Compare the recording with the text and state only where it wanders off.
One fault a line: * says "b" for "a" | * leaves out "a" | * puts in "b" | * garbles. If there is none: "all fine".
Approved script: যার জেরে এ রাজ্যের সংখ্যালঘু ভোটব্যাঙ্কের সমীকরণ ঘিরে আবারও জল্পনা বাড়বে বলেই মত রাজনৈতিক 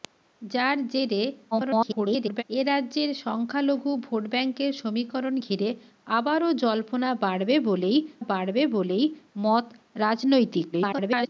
* garbles
* puts in "বাড়বে বলেই"
* garbles